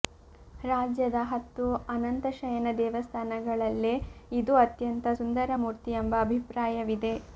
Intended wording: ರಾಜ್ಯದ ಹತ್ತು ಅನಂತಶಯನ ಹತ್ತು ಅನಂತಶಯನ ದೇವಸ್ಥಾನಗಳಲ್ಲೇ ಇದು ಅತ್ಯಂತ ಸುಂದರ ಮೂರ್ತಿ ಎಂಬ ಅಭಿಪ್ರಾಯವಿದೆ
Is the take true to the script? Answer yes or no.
no